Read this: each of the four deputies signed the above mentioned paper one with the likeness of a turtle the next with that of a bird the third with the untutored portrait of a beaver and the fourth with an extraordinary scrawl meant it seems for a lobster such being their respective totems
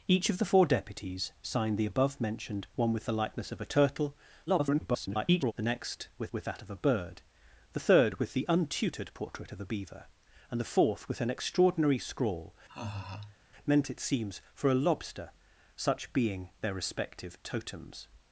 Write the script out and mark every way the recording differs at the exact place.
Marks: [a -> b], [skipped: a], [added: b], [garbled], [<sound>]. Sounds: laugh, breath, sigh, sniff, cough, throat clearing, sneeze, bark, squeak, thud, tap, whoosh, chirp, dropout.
each of the four deputies signed the above mentioned [skipped: paper] one with the likeness of a turtle [garbled] the next with [added: with] that of a bird the third with the untutored portrait of a beaver and the fourth with an extraordinary scrawl [laugh] meant it seems for a lobster such being their respective totems